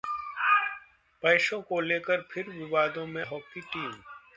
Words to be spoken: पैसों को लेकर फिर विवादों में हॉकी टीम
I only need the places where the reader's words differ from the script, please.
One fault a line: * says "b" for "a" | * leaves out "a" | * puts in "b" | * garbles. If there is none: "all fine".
all fine